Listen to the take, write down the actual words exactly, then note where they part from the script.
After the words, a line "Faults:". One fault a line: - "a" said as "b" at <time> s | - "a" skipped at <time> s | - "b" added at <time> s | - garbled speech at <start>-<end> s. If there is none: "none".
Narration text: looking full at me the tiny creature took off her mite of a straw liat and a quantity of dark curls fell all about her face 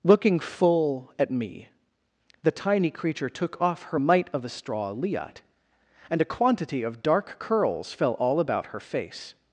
looking full at me the tiny creature took off her mite of a straw liat and a quantity of dark curls fell all about her face
Faults:
none